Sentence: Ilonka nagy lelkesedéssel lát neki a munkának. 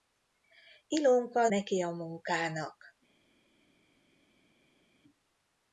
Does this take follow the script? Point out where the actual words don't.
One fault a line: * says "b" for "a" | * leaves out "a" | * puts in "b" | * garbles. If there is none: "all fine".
* leaves out "nagy lelkesedéssel lát"